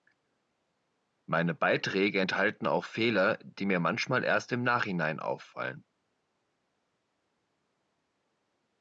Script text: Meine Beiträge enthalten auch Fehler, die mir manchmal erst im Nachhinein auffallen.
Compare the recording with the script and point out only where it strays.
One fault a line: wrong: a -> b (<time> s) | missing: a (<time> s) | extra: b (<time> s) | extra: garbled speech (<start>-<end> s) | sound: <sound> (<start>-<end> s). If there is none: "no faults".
no faults